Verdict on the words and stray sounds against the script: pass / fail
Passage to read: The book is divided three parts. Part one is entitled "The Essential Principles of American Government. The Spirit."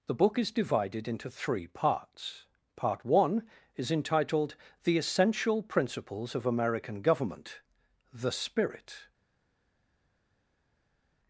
fail